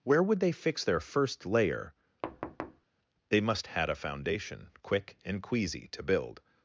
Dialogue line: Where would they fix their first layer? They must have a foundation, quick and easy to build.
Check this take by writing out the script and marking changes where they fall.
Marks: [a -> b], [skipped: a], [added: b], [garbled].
Where would they fix their first layer? They must [have -> had] a foundation, quick and [easy -> queasy] to build.